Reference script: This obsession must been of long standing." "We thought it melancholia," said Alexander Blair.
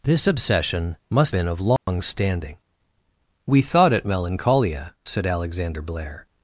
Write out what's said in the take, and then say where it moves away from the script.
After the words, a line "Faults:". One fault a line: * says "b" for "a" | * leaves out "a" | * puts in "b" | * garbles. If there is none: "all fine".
This obsession must been of long standing." "We thought it melancholia," said Alexander Blair.
Faults:
all fine